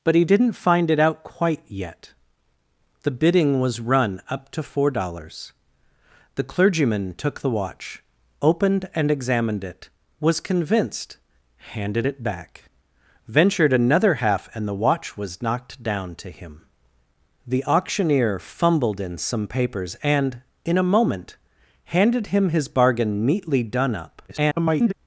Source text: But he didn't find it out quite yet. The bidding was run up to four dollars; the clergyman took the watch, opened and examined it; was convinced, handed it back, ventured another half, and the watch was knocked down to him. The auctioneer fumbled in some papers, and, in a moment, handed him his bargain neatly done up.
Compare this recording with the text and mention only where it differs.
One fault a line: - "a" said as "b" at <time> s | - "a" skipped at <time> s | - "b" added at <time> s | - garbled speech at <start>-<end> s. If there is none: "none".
- garbled speech at 24.3-24.9 s